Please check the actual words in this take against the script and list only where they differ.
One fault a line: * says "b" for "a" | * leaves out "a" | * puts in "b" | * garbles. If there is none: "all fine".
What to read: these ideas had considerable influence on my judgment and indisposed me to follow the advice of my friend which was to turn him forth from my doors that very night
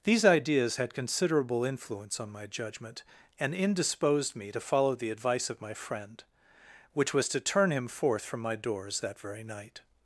all fine